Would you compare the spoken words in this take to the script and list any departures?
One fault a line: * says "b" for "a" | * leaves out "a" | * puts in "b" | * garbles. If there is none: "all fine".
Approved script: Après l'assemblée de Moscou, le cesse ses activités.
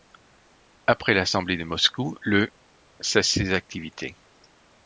all fine